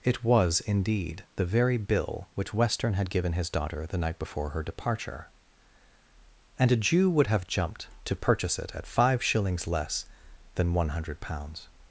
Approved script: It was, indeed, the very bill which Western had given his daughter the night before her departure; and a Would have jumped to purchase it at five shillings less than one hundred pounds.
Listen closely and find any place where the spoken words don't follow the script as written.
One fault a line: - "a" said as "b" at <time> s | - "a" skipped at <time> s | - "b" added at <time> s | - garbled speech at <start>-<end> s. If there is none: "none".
- "Jew" added at 6.8 s